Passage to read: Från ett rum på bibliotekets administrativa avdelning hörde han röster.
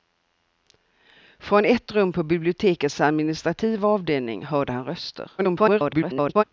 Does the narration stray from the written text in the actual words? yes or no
yes